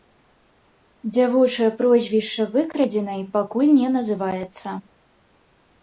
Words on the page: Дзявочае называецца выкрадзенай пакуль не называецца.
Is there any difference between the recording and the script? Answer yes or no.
yes